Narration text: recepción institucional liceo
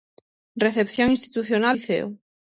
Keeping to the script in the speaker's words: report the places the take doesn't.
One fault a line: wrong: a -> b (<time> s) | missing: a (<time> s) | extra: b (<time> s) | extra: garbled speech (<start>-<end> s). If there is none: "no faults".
no faults